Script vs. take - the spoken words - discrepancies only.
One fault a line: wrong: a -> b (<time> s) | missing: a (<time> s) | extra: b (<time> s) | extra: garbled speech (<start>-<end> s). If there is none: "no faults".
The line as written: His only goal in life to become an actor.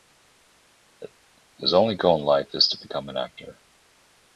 extra: is (2.5 s)